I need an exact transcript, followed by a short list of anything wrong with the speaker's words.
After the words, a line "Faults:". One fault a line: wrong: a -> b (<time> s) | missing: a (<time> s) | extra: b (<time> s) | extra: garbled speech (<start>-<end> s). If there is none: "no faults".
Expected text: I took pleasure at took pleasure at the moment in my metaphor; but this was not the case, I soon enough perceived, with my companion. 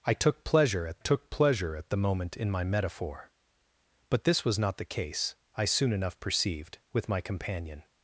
I took pleasure at took pleasure at the moment in my metaphor; but this was not the case, I soon enough perceived, with my companion.
Faults:
no faults